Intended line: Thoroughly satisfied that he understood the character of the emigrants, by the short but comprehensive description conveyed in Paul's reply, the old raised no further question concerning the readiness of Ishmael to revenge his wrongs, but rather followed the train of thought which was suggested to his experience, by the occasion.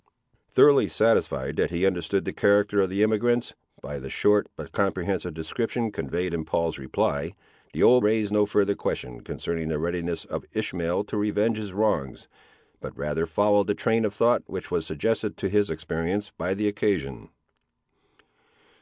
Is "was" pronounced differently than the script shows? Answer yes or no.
no